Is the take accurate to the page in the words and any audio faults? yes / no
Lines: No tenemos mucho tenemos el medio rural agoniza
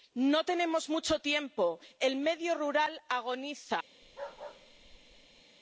no